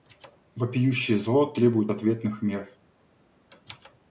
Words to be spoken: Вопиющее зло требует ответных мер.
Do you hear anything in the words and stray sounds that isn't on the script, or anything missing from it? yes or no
no